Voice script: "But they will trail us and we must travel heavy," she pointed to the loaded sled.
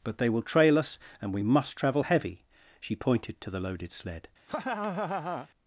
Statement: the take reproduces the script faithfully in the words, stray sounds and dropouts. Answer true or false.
false